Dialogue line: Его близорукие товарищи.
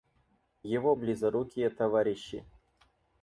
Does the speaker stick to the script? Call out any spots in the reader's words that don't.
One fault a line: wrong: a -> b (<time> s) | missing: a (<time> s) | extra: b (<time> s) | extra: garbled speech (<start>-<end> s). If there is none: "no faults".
no faults